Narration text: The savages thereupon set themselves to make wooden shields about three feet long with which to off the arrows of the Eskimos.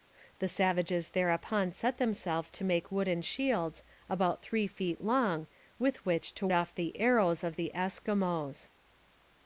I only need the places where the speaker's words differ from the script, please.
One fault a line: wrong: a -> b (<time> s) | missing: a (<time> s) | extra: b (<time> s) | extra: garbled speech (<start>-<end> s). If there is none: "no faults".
no faults